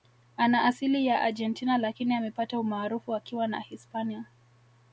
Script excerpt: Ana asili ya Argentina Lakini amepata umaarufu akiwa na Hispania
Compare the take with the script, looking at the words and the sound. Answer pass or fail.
pass